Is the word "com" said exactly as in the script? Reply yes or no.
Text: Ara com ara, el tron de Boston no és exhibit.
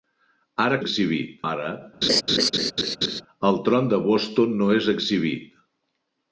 no